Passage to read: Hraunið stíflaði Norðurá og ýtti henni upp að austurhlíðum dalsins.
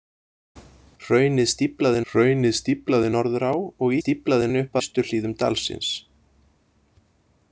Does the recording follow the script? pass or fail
fail